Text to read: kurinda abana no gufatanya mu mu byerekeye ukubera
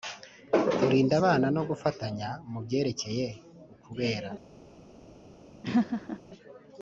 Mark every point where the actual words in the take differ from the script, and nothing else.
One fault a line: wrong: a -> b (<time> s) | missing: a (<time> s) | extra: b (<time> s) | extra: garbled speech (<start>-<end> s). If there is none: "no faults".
missing: mu (2.6 s)